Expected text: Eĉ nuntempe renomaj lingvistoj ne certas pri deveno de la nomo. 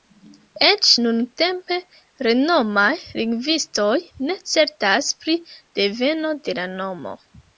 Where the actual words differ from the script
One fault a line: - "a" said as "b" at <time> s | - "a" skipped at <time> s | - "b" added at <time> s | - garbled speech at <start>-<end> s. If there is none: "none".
none